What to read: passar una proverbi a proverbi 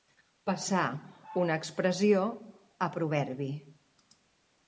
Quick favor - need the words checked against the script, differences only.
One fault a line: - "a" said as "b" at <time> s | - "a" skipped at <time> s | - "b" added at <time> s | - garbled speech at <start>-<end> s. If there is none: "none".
- "proverbi" said as "expressió" at 1.6 s